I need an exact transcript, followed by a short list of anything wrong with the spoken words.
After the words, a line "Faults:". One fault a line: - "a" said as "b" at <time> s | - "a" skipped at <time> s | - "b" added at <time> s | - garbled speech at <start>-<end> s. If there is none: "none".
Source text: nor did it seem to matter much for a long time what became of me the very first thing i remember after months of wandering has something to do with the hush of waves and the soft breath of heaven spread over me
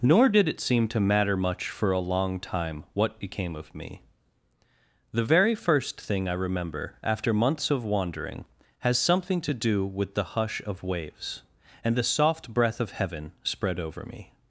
nor did it seem to matter much for a long time what became of me the very first thing i remember after months of wandering has something to do with the hush of waves and the soft breath of heaven spread over me
Faults:
none